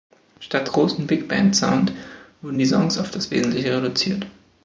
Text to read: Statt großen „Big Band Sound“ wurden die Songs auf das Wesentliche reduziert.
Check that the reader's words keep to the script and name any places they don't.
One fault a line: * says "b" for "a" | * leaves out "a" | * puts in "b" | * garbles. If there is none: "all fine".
all fine